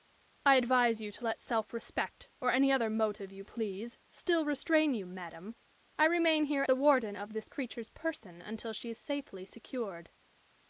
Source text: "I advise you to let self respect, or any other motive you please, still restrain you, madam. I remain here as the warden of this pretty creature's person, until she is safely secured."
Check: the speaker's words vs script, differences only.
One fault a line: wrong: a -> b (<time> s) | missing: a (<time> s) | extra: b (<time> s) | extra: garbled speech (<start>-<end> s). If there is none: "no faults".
missing: as (6.6 s)
missing: pretty (7.5 s)